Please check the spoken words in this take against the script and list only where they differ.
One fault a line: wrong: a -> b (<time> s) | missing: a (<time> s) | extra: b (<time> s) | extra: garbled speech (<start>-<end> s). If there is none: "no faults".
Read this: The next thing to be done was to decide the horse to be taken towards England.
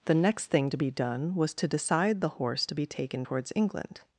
no faults